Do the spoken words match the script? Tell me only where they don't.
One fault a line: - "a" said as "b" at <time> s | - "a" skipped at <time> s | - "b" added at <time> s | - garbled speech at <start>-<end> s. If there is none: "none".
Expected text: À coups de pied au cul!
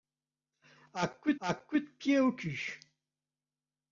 - "à coups" added at 1.4 s